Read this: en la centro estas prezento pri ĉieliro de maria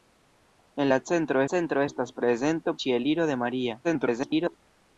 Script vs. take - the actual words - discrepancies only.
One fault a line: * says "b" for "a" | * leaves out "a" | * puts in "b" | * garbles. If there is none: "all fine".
* puts in "centro"
* leaves out "pri"
* garbles